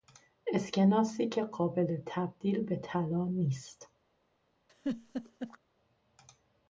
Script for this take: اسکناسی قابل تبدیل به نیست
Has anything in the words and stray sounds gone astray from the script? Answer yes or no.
yes